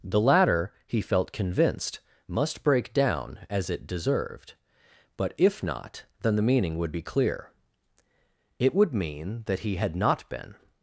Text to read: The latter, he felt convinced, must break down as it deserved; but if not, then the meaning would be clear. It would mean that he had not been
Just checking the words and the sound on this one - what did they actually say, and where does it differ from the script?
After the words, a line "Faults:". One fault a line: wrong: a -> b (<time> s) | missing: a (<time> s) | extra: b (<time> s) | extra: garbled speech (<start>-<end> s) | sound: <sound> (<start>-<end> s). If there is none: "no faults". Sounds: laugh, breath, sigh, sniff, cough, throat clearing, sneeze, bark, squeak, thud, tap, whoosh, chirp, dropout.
The latter, he felt convinced, must break down as it deserved; but if not, then the meaning would be clear. It would mean that he had not been
Faults:
no faults